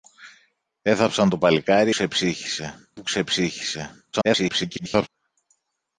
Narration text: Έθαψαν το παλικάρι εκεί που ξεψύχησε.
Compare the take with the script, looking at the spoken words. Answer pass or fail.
fail